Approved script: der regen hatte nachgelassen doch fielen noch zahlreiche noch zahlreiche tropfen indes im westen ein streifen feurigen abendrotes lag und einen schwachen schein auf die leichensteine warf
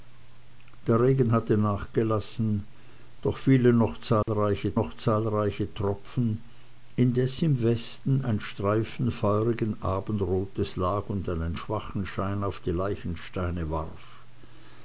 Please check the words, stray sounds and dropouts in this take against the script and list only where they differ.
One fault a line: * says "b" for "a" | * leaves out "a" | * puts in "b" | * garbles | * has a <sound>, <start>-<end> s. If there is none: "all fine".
* has a dropout, 4.2-4.3 s